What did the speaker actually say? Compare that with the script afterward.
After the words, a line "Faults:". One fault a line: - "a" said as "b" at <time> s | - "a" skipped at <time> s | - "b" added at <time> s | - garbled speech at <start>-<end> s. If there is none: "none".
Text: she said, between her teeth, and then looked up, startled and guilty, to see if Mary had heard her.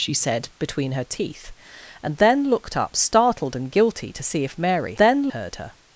she said, between her teeth, and then looked up, startled and guilty, to see if Mary then heard her.
Faults:
- "had" said as "then" at 5.0 s